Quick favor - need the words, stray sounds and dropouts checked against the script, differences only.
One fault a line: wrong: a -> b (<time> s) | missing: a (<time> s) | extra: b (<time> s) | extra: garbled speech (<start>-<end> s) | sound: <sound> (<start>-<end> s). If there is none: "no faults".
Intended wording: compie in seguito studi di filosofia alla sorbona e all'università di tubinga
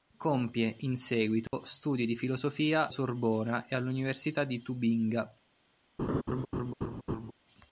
sound: dropout (1.5-1.5 s)
missing: alla (2.9 s)
sound: laugh (6.0-7.3 s)